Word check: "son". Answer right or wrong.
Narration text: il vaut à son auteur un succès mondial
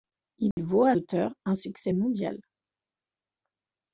wrong